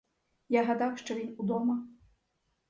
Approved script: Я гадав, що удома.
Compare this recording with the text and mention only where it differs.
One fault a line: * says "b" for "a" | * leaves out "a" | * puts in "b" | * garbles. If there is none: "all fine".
* puts in "він"